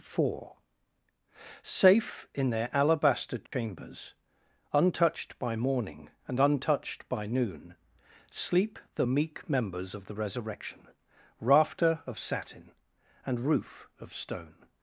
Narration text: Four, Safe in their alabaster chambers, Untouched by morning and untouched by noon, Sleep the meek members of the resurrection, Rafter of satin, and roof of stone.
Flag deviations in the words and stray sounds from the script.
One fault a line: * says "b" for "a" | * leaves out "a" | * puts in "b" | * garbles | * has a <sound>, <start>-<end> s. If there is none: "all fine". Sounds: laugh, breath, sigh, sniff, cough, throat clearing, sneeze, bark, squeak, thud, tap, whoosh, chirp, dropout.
* has a dropout, 3.5-3.5 s